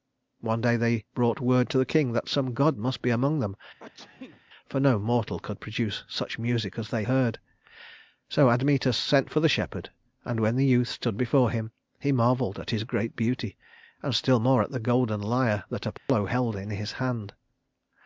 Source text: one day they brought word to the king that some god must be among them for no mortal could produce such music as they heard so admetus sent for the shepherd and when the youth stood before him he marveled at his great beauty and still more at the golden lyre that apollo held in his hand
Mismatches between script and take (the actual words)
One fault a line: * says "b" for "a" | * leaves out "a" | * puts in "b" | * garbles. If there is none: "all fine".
all fine